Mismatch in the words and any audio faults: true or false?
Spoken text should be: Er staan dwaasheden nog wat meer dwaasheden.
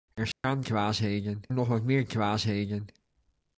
true